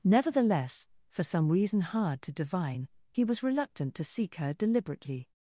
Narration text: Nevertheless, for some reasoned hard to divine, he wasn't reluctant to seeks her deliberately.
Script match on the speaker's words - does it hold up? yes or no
no